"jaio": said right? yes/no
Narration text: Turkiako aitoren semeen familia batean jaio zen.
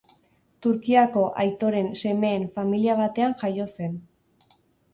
yes